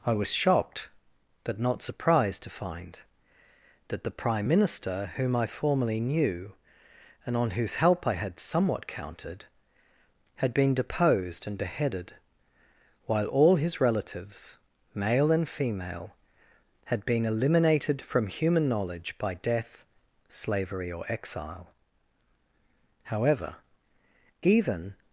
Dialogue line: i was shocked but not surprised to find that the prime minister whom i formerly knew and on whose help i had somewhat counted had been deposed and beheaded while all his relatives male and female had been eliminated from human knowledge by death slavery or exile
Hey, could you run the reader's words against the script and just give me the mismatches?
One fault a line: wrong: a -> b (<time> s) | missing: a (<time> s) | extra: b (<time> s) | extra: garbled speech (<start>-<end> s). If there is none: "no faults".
extra: however even (23.0 s)